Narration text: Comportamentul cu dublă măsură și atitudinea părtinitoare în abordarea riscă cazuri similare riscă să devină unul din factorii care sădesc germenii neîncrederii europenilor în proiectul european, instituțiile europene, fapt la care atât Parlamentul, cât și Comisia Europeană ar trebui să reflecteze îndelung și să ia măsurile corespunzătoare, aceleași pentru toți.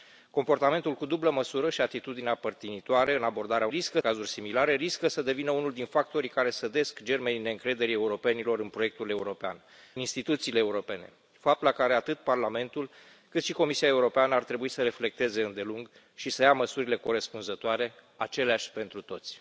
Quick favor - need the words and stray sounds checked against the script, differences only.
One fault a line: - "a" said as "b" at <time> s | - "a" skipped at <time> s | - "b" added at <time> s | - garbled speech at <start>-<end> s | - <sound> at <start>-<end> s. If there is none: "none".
none